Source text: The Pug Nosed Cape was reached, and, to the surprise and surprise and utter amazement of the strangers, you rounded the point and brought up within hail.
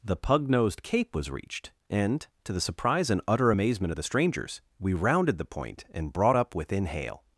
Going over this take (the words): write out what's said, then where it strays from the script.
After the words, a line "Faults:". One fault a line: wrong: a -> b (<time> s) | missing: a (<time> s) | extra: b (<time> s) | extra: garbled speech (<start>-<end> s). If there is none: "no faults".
The Pug Nosed Cape was reached, and, to the surprise and utter amazement of the strangers, we rounded the point and brought up within hail.
Faults:
missing: surprise and (3.2 s)
wrong: you -> we (4.8 s)